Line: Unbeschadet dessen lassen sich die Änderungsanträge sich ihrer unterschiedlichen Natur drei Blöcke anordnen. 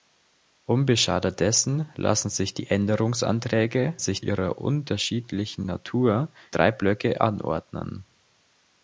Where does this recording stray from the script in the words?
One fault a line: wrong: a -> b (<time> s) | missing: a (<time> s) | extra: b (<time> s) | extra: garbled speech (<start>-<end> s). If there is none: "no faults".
no faults